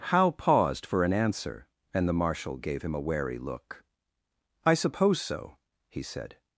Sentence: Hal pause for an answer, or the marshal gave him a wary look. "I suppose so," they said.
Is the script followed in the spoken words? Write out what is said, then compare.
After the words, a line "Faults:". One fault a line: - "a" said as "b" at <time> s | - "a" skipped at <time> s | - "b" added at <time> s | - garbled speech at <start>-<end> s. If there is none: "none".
Hal paused for an answer, and the marshal gave him a wary look. "I suppose so," he said.
Faults:
- "pause" said as "paused" at 0.3 s
- "or" said as "and" at 1.9 s
- "they" said as "he" at 5.9 s